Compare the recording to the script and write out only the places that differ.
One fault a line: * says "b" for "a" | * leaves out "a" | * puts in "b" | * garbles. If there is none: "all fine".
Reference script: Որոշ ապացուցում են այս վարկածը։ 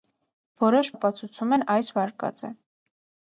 all fine